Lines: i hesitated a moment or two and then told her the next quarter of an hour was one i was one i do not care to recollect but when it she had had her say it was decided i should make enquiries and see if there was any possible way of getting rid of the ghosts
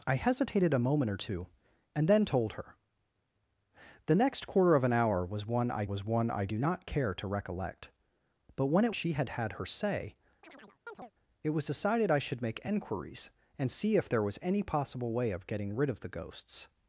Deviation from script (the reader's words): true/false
false